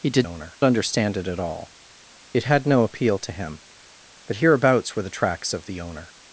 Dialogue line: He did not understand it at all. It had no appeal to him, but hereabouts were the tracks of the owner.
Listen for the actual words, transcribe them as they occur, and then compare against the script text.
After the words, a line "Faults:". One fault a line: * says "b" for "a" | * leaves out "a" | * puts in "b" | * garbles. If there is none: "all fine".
He did owner understand it at all. It had no appeal to him, but hereabouts were the tracks of the owner.
Faults:
* says "owner" for "not"